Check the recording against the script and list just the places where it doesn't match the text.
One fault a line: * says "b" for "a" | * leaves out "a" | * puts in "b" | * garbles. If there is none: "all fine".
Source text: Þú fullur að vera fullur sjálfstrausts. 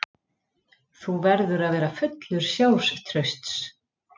* says "verður" for "fullur"